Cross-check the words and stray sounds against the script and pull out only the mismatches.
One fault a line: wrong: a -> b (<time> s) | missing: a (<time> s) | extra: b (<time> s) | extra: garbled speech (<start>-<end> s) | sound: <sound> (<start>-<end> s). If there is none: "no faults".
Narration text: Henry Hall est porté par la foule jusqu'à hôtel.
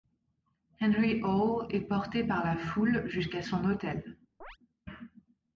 extra: son (3.4 s)
sound: chirp (4.4-4.6 s)